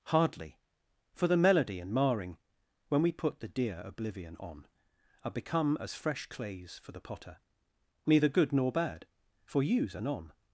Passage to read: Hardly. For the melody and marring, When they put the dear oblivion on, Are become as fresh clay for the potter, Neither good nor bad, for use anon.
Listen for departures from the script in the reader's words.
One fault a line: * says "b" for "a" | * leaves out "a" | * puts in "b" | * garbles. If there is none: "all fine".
* says "we" for "they"
* says "clays" for "clay"